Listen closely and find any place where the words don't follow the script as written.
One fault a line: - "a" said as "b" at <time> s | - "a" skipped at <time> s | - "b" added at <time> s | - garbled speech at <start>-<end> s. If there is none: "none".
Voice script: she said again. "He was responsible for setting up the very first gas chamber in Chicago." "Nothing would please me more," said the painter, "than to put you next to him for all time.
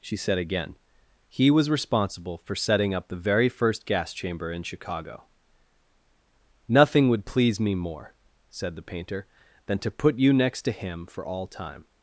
none